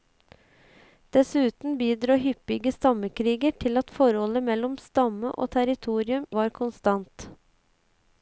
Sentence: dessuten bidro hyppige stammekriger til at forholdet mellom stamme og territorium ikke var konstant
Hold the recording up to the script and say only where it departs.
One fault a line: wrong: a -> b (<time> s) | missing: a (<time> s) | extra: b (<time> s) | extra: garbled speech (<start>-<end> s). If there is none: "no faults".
missing: ikke (6.2 s)